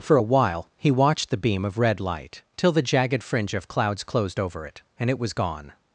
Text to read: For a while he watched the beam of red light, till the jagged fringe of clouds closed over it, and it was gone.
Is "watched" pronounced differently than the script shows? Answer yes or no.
no